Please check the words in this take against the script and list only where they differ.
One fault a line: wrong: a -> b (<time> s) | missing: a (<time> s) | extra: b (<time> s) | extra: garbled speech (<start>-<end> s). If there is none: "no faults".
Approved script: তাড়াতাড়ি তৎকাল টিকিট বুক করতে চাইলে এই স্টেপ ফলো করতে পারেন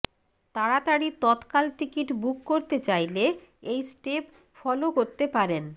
no faults